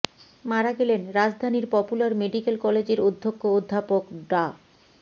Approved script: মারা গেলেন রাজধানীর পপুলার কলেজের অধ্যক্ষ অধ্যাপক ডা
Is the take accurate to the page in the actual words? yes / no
no